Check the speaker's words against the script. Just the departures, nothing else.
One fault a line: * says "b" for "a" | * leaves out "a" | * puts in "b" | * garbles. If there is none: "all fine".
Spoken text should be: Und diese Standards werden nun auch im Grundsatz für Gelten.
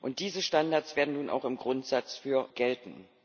all fine